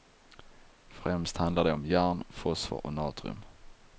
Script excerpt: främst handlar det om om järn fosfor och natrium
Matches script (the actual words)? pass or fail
fail